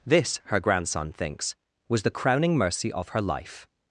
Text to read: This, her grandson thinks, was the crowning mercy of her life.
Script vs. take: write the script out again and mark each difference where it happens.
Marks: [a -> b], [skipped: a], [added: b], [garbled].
This, her grandson thinks, was the crowning mercy of her life.